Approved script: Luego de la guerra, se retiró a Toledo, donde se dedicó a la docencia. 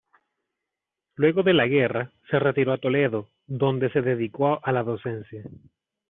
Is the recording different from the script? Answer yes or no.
no